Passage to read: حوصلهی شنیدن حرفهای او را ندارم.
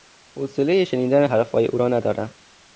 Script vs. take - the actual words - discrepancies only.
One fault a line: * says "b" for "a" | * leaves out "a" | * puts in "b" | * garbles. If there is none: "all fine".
all fine